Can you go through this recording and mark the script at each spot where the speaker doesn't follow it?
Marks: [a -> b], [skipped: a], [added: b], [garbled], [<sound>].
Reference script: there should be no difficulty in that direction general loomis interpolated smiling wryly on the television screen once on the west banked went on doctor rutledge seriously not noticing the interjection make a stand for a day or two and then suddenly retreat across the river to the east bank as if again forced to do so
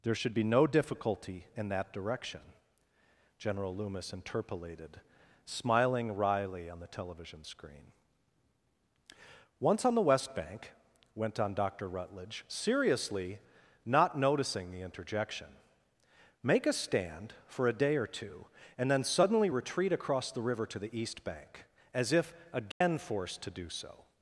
there should be no difficulty in that direction general loomis interpolated smiling wryly on the television screen once on the west [banked -> bank] went on doctor rutledge seriously not noticing the interjection make a stand for a day or two and then suddenly retreat across the river to the east bank as if again [dropout] forced to do so